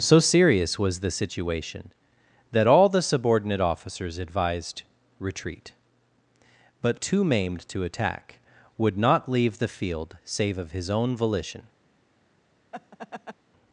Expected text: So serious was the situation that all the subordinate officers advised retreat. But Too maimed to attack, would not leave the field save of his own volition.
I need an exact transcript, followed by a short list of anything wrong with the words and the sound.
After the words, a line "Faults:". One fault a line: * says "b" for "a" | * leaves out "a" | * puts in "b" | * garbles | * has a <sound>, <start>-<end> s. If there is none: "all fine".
So serious was the situation that all the subordinate officers advised retreat. But Too maimed to attack, would not leave the field save of his own volition.
Faults:
* has a laugh, 12.7-13.4 s